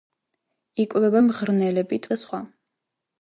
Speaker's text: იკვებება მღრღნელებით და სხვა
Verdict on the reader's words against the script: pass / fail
pass